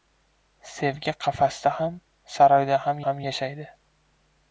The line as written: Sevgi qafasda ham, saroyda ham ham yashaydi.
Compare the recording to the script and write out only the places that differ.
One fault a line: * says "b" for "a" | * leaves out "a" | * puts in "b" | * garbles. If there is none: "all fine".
all fine